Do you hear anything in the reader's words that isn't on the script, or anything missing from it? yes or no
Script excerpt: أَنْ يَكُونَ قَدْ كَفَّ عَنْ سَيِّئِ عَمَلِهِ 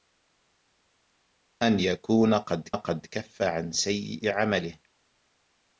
yes